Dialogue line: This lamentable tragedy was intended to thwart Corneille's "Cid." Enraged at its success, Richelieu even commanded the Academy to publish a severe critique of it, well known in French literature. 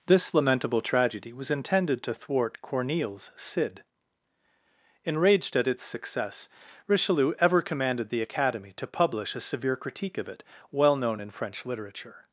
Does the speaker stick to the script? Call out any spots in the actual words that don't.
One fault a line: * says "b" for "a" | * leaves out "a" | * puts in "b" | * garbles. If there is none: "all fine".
* says "ever" for "even"